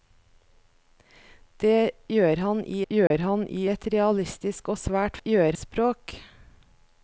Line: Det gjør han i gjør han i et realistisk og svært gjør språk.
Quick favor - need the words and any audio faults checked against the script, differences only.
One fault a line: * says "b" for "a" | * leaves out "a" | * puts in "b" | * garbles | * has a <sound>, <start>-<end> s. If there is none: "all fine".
* has a dropout, 3.1-3.1 s